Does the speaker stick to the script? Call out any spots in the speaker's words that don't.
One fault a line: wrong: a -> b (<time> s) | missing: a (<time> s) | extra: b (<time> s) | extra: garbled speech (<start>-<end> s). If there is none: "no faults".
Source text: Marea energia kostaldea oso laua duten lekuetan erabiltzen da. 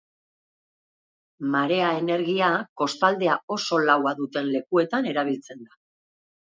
no faults